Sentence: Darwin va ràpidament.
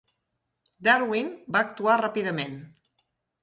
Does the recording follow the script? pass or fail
fail